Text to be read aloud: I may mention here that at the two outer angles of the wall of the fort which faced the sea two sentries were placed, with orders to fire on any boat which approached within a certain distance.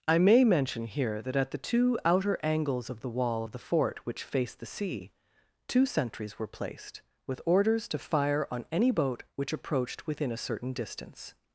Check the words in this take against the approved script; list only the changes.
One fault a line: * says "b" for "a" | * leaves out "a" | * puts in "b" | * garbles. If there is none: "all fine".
all fine